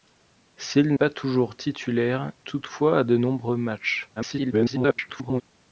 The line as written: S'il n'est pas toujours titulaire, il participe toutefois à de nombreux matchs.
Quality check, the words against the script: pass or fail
fail